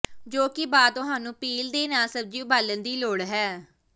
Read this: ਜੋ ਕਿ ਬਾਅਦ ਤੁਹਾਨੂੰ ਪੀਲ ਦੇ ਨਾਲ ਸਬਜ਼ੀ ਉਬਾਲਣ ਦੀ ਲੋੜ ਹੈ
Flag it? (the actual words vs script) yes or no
no